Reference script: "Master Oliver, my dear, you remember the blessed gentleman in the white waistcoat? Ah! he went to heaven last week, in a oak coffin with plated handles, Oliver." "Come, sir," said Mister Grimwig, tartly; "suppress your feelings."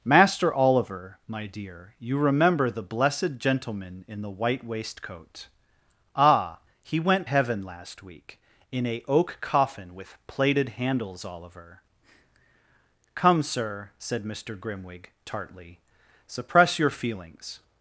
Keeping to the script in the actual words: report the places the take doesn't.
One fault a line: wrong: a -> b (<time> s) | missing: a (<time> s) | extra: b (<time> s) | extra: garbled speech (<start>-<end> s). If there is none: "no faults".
missing: to (7.3 s)